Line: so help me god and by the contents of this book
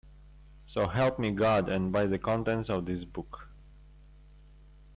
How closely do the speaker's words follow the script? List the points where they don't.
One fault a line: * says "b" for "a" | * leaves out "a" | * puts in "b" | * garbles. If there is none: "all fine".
all fine